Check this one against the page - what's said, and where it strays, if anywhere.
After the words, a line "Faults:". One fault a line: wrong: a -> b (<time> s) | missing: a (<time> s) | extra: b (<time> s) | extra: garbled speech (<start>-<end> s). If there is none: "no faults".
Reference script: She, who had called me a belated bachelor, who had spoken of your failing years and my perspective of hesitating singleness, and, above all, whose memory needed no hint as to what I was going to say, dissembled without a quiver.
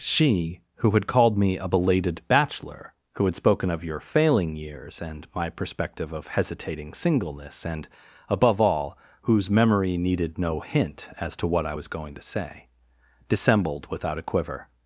She, who had called me a belated bachelor, who had spoken of your failing years and my perspective of hesitating singleness, and, above all, whose memory needed no hint as to what I was going to say, dissembled without a quiver.
Faults:
no faults